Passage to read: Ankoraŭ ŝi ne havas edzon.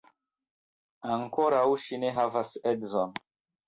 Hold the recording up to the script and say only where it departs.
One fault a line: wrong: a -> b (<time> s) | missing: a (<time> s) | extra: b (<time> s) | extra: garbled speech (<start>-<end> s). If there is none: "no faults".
no faults